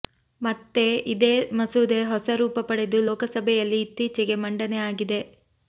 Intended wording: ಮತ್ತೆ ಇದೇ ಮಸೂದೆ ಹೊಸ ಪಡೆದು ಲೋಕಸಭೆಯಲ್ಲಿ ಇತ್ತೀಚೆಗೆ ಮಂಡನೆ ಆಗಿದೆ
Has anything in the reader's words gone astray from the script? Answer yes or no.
yes